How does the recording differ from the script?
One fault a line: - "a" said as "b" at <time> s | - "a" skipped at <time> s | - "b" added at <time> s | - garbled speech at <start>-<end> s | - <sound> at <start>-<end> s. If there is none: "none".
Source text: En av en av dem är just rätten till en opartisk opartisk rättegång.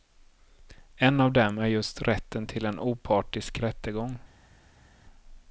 - "en av" skipped at 1.3 s
- "opartisk" skipped at 3.6 s